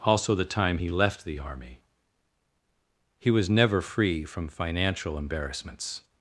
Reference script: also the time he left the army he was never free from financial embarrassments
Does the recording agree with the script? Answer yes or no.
yes